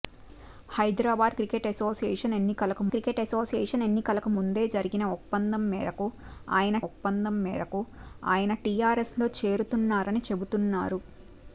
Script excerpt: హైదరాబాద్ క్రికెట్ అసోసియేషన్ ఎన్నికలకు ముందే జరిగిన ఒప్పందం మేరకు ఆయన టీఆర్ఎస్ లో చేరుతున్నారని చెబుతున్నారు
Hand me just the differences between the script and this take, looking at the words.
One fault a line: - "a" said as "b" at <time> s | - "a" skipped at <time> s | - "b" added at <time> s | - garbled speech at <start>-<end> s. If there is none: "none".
- "క్రికెట్ అసోసియేషన్ ఎన్నికలకు" added at 2.9 s
- "ఒప్పందం మేరకు ఆయన" added at 6.9 s